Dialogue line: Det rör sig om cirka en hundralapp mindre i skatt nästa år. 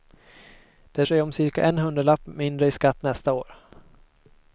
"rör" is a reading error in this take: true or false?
true